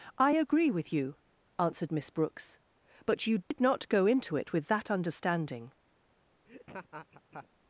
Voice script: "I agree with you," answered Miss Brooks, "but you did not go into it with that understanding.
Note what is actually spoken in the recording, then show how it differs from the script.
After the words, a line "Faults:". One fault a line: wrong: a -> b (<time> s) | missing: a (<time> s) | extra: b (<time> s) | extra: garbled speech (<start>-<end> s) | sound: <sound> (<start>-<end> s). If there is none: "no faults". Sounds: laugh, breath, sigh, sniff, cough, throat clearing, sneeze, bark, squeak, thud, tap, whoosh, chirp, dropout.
"I agree with you," answered Miss Brooks, "but you did not go into it with that understanding.
Faults:
sound: dropout (3.4-3.5 s)
sound: laugh (6.5-7.5 s)